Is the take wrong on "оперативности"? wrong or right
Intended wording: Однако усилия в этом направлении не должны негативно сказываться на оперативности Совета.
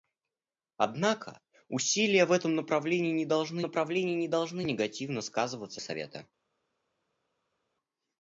wrong